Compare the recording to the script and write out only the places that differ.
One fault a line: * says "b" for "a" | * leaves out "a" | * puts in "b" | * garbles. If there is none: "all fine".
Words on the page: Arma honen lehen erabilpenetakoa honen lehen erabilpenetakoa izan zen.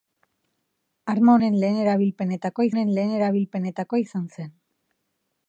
all fine